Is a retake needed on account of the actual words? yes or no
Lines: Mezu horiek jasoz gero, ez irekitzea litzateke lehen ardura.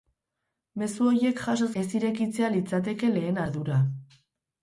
yes